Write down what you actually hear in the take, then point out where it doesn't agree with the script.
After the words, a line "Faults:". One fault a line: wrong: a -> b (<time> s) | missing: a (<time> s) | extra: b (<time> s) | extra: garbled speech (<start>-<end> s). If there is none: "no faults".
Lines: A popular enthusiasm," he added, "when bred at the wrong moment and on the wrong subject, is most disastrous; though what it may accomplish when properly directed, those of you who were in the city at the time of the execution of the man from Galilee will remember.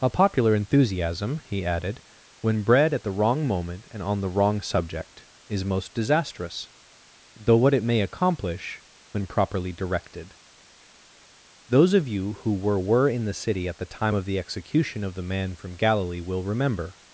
A popular enthusiasm," he added, "when bred at the wrong moment and on the wrong subject, is most disastrous; though what it may accomplish when properly directed, those of you who were were in the city at the time of the execution of the man from Galilee will remember.
Faults:
extra: were (12.8 s)